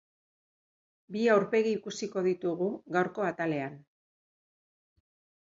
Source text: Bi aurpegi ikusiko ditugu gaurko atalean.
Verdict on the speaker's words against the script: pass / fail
pass